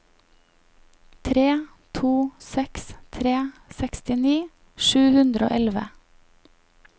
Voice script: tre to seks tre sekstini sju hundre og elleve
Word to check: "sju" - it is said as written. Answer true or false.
true